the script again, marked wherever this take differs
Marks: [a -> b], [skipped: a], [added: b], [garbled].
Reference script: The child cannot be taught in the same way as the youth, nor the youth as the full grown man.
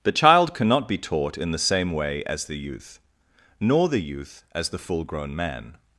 The child cannot be taught in the same way as the youth, nor the youth as the full grown man.